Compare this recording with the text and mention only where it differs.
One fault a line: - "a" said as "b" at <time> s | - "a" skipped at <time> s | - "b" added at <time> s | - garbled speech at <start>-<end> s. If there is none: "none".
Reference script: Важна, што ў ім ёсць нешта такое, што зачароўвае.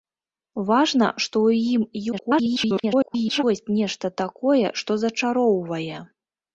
- garbled speech at 2.1-3.4 s